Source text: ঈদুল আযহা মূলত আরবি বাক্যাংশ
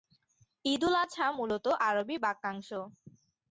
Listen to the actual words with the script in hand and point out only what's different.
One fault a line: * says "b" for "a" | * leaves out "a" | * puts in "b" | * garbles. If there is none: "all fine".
all fine